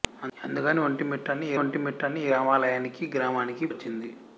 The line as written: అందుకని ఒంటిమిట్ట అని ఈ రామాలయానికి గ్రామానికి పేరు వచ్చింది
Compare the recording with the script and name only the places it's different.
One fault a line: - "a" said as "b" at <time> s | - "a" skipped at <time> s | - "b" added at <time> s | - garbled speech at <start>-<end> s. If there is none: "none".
- "ఒంటిమిట్ట అని ఈ" added at 1.6 s
- "పేరు" skipped at 3.7 s